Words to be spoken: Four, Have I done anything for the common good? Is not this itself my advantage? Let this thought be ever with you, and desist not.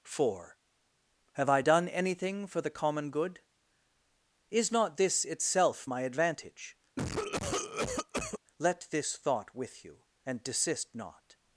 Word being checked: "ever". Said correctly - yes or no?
no